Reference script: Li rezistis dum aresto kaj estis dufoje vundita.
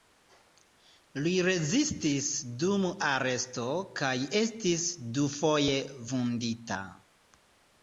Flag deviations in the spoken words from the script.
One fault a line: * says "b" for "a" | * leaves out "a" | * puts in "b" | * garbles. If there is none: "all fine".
all fine